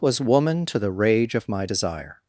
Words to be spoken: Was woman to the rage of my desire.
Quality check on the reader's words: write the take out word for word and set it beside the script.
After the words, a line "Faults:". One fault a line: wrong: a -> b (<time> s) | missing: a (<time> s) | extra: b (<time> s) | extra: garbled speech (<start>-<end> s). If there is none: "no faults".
Was woman to the rage of my desire.
Faults:
no faults